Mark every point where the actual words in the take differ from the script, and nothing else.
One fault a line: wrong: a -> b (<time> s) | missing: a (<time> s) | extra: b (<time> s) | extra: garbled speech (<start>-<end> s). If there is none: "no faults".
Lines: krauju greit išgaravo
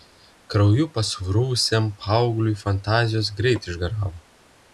extra: pasruvusiam paaugliui fantazijos (0.9 s)